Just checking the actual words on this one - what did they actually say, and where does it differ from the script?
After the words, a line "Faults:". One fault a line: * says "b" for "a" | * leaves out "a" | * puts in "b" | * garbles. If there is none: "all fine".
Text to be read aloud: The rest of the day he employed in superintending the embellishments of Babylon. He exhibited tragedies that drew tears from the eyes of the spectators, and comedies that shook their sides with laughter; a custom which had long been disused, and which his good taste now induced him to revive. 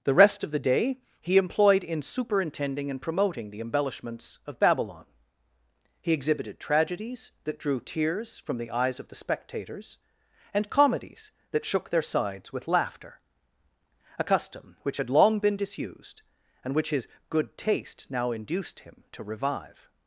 The rest of the day he employed in superintending and promoting the embellishments of Babylon. He exhibited tragedies that drew tears from the eyes of the spectators, and comedies that shook their sides with laughter; a custom which had long been disused, and which his good taste now induced him to revive.
Faults:
* puts in "and promoting"